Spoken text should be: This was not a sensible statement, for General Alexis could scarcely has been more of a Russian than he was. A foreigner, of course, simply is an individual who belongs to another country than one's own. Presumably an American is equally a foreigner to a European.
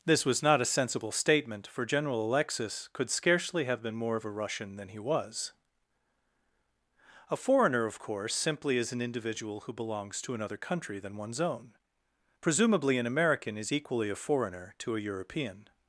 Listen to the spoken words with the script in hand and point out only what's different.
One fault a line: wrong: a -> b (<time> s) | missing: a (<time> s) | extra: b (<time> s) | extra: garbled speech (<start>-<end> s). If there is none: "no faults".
wrong: has -> have (3.6 s)